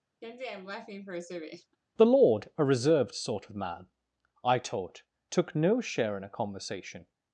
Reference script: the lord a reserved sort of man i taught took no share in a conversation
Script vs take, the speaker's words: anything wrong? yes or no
no